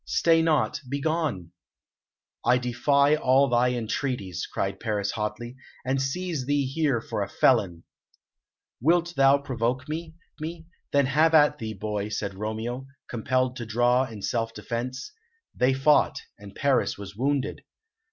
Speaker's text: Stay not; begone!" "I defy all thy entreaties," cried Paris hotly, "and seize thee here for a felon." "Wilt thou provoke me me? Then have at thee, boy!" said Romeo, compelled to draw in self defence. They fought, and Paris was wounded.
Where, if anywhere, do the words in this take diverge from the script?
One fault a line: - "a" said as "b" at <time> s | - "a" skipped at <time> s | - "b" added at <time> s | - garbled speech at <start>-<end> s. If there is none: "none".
none